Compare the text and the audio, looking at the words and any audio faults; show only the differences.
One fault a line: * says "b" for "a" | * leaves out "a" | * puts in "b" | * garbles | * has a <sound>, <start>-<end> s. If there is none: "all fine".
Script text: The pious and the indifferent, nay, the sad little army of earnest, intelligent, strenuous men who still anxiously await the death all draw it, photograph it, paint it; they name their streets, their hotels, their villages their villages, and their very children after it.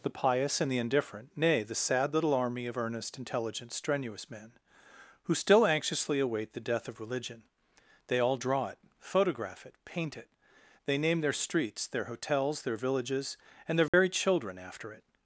* puts in "of religion they"
* leaves out "their villages"
* has a dropout, 13.9-13.9 s